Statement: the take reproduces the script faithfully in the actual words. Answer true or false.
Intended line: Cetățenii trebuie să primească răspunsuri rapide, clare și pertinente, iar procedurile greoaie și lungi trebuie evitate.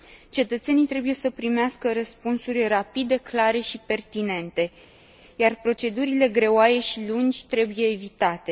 true